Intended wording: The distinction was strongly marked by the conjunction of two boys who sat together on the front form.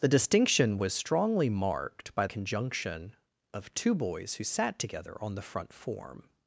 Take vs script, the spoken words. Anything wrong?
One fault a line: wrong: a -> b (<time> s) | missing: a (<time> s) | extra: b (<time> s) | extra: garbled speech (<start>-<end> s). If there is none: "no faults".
missing: the (2.3 s)